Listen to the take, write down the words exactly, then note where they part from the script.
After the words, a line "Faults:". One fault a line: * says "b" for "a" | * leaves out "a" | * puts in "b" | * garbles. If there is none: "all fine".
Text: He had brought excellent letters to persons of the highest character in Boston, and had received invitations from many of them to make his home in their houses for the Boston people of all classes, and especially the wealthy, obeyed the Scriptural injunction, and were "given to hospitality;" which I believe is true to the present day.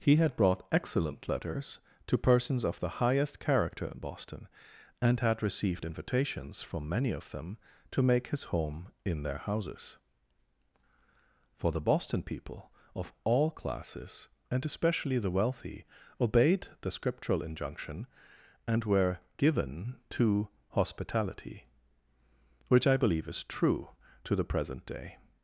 He had brought excellent letters to persons of the highest character in Boston, and had received invitations from many of them to make his home in their houses for the Boston people of all classes, and especially the wealthy, obeyed the Scriptural injunction, and were "given to hospitality;" which I believe is true to the present day.
Faults:
all fine